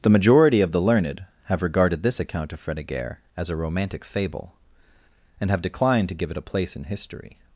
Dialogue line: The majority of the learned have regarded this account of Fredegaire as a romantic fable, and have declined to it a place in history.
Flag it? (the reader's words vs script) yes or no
yes